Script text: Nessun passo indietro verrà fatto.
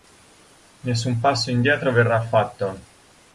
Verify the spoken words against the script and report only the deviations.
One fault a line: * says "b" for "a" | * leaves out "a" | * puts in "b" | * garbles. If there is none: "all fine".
all fine